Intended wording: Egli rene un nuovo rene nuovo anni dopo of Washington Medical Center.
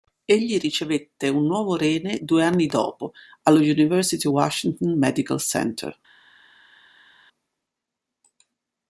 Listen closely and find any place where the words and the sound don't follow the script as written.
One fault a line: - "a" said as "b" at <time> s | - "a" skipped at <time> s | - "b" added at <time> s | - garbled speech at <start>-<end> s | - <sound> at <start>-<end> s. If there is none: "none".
- "rene" said as "ricevette" at 0.6 s
- "nuovo" said as "due" at 2.2 s
- "allo University" added at 3.4 s